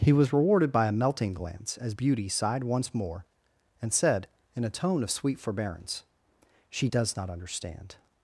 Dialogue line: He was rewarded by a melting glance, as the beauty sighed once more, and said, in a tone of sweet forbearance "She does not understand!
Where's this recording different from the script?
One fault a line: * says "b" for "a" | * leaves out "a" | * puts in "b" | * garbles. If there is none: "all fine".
* leaves out "the"